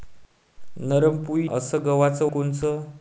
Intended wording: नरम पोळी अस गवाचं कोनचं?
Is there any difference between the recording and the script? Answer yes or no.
no